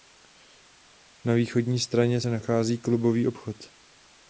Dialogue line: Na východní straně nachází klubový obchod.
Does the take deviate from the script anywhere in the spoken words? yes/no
yes